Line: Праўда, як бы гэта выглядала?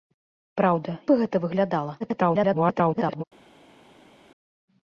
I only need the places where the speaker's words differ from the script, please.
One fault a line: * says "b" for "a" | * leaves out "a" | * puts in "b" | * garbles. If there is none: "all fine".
* leaves out "як"
* garbles